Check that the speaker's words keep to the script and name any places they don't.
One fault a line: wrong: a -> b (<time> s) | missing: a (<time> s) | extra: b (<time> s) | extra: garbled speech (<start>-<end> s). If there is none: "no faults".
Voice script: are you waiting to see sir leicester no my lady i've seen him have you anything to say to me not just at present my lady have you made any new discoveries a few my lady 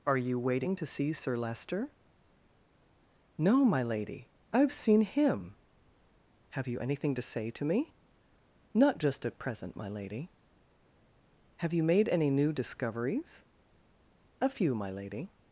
no faults